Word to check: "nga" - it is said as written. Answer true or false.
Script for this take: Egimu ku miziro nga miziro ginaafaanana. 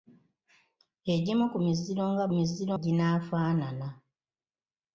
true